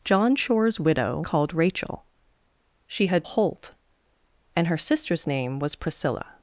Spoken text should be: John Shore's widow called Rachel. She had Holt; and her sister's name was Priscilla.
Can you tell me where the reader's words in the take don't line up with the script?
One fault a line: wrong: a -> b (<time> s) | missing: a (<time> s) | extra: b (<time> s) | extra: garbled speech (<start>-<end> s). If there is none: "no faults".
no faults